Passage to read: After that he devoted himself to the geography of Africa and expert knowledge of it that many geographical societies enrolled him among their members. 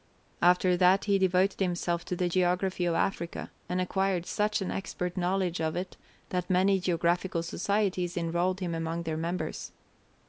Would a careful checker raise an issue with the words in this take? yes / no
yes